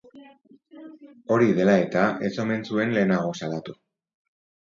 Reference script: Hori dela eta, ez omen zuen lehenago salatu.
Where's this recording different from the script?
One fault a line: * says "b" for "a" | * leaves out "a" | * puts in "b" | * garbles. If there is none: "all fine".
all fine